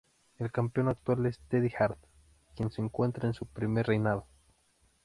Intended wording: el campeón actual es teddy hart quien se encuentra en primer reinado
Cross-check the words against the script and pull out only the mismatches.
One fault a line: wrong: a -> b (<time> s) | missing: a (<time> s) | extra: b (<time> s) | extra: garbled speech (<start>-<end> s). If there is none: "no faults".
extra: su (3.4 s)